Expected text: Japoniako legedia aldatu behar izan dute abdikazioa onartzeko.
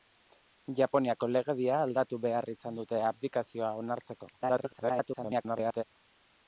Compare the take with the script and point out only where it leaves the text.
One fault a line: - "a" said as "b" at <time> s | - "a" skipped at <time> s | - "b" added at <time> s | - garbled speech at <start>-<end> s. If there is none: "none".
- garbled speech at 4.4-5.8 s